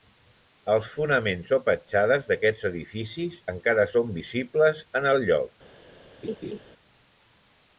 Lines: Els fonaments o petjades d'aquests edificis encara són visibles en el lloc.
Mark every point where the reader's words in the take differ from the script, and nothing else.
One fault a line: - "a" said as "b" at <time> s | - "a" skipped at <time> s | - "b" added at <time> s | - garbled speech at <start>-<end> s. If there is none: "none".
none